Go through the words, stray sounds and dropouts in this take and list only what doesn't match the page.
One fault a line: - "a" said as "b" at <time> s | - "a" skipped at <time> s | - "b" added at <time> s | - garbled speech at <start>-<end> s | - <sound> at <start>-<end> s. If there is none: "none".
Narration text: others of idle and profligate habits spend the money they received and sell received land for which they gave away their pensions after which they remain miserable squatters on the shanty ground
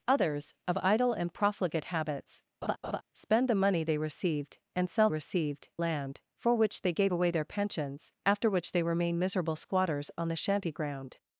- laugh at 2.6-3.0 s